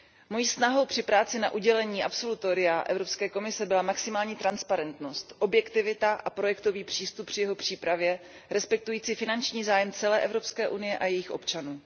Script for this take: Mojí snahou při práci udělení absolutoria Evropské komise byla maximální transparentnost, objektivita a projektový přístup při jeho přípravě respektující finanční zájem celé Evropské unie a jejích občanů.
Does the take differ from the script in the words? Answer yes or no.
yes